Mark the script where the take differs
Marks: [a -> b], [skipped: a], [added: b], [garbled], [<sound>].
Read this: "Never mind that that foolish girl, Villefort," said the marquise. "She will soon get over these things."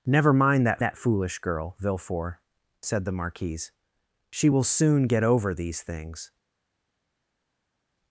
"Never mind that that foolish girl, Villefort," said the marquise. "She will soon get over these things."